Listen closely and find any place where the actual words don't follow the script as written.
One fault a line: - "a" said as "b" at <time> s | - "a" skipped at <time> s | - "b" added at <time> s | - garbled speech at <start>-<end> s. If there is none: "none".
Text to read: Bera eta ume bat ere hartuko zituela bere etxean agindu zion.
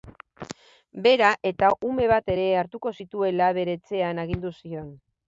none